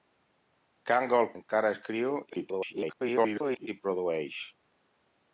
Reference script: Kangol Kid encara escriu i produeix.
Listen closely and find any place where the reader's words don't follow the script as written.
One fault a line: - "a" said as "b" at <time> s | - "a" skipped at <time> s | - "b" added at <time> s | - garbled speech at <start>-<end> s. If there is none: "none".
- "Kid" skipped at 1.3 s
- garbled speech at 2.3-3.7 s